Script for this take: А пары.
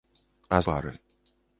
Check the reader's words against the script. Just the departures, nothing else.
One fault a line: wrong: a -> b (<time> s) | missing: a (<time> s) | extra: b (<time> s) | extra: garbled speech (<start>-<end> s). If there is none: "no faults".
no faults